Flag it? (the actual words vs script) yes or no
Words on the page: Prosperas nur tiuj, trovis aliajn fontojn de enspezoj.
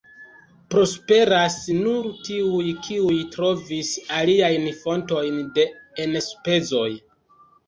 yes